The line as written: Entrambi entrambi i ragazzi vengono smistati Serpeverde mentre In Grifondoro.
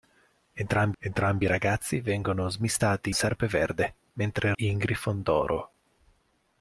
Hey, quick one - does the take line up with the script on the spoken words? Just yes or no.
yes